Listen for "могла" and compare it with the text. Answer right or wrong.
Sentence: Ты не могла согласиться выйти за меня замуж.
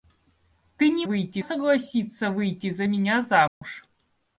wrong